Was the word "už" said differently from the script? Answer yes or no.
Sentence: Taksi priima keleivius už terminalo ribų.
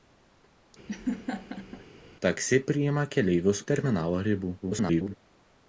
yes